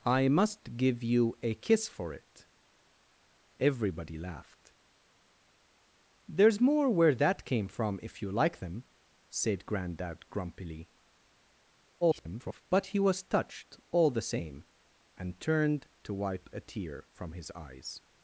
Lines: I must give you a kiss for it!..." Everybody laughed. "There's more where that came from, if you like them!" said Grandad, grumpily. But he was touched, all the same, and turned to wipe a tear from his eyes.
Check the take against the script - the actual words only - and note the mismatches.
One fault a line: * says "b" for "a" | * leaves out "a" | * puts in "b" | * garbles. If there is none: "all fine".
* garbles